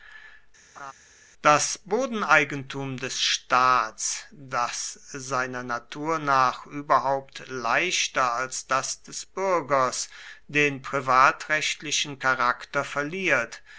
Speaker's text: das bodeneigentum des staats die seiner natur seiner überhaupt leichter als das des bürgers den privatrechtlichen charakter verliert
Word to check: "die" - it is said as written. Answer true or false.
false